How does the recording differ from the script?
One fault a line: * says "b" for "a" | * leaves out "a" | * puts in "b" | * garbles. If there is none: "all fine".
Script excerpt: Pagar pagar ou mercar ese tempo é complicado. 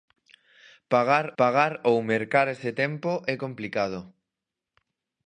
all fine